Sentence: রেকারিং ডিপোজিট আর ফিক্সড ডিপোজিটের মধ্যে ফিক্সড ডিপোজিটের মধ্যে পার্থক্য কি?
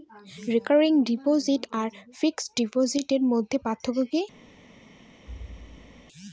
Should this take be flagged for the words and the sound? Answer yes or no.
yes